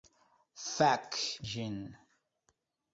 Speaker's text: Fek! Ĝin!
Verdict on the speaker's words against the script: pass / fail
pass